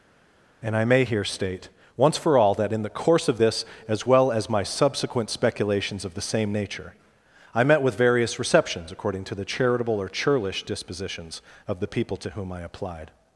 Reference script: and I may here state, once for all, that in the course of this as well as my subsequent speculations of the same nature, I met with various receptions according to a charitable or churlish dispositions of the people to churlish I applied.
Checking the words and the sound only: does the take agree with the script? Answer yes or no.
no